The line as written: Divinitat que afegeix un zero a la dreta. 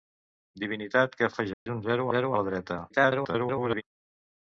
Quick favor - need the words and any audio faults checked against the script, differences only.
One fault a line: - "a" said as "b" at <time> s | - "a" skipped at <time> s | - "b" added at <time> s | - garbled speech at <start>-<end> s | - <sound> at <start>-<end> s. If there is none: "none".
- dropout at 1.5-1.7 s
- "zero" added at 2.2 s
- garbled speech at 2.9-3.8 s